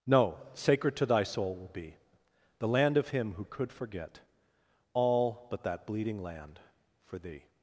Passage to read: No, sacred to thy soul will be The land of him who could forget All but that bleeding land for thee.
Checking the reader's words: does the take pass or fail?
pass